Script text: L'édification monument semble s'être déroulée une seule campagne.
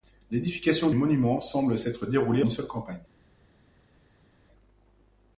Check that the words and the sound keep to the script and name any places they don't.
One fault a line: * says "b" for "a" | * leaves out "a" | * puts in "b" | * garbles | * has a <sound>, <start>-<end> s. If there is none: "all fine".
all fine